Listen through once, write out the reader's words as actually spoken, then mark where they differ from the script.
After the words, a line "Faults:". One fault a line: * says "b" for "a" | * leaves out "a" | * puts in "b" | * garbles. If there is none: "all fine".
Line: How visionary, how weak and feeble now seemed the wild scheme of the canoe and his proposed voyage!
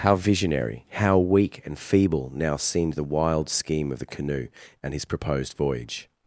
How visionary, how weak and feeble now seemed the wild scheme of the canoe and his proposed voyage!
Faults:
all fine